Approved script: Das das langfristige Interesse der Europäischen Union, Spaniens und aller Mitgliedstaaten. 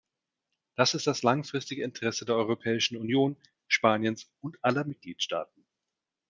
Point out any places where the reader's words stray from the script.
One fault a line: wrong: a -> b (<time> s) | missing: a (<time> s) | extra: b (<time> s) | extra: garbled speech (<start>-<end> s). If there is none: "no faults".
extra: ist (0.9 s)